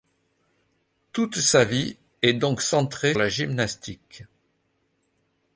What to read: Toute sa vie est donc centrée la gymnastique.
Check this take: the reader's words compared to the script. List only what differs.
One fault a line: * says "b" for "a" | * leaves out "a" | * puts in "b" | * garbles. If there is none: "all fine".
all fine